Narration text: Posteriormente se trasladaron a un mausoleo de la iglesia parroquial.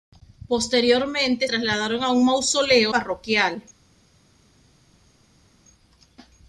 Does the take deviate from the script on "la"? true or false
true